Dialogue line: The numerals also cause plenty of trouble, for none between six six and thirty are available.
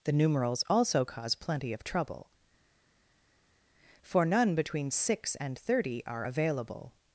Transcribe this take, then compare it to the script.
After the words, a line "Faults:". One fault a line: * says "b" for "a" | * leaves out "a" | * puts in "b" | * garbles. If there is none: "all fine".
The numerals also cause plenty of trouble, for none between six and thirty are available.
Faults:
* leaves out "six"